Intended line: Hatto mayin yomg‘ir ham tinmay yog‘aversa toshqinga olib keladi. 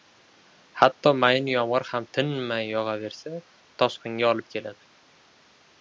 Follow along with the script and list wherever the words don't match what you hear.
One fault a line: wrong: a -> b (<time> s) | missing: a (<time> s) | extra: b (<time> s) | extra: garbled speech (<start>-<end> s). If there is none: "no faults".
no faults